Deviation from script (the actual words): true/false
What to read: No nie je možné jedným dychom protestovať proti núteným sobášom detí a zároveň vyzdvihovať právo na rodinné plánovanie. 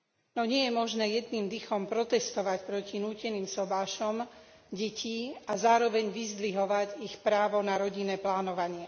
true